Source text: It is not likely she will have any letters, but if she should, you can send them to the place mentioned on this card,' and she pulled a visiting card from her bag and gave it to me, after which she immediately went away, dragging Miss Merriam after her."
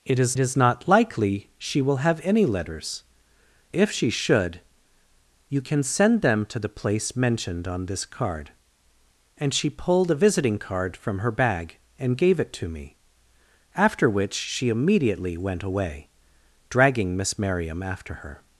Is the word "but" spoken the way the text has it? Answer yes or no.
no